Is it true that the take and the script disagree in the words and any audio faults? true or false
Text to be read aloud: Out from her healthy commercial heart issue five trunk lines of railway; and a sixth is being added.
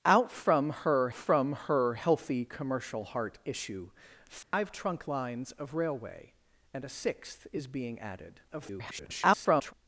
true